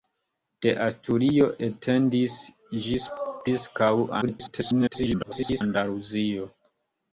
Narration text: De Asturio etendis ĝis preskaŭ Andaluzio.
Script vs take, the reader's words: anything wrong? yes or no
yes